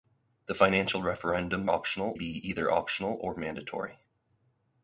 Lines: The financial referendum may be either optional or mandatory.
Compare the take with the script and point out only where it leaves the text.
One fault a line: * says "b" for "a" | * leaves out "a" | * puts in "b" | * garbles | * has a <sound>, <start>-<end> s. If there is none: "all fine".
* says "optional" for "may"